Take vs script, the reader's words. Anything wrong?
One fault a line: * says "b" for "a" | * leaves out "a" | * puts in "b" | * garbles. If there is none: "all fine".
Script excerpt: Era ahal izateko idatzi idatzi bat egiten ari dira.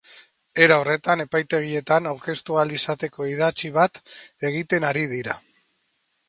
* puts in "horretan epaitegietan aurkeztu"
* leaves out "idatzi"